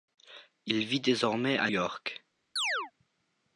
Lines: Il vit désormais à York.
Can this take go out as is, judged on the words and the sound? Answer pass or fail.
fail